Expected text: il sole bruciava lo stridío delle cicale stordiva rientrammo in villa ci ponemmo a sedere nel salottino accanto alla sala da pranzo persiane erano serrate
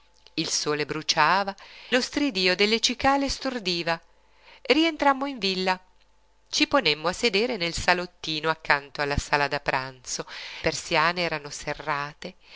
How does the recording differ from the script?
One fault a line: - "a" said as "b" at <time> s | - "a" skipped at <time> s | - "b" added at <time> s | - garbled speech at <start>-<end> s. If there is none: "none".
none